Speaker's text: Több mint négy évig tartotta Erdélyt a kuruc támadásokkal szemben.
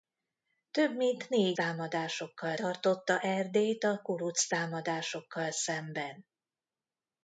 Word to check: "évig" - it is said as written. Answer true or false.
false